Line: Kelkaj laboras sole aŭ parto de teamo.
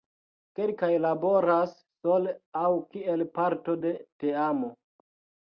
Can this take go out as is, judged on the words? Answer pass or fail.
fail